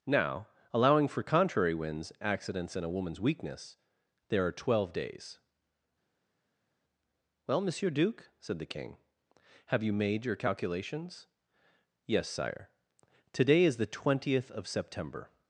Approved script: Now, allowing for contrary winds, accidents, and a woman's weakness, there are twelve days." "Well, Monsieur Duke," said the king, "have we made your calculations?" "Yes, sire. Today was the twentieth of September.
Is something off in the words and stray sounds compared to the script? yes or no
yes